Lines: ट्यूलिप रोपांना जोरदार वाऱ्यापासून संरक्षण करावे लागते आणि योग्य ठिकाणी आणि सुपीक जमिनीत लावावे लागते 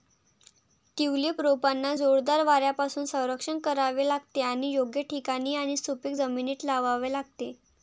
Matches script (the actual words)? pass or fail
pass